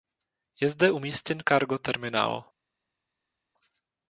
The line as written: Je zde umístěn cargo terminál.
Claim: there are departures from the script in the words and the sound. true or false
false